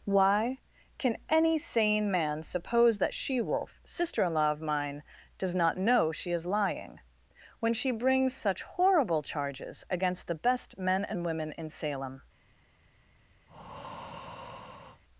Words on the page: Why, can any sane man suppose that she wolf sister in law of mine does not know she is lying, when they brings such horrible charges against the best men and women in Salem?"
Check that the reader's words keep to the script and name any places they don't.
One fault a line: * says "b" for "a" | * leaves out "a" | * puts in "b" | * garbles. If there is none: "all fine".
* says "she" for "they"